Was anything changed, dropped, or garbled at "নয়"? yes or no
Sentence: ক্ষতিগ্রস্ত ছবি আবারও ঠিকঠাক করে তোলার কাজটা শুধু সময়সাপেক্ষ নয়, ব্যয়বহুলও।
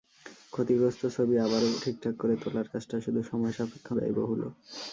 yes